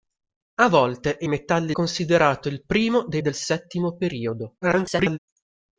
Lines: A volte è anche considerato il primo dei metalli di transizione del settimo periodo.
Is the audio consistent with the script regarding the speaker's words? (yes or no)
no